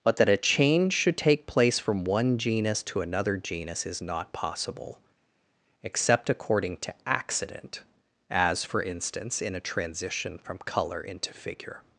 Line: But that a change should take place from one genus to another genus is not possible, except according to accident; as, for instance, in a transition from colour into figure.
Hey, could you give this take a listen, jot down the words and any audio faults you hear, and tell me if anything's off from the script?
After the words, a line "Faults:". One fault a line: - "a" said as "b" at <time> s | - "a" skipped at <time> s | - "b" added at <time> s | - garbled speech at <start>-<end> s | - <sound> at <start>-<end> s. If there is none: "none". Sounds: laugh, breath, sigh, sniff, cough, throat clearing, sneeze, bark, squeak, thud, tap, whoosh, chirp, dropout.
But that a change should take place from one genus to another genus is not possible, except according to accident; as, for instance, in a transition from colour into figure.
Faults:
none